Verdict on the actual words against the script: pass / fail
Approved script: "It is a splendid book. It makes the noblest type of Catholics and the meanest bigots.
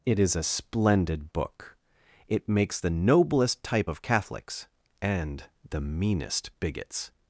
pass